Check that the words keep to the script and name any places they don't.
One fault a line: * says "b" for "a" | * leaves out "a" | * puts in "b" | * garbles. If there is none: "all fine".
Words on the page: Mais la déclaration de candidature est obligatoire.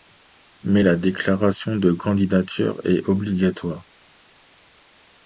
all fine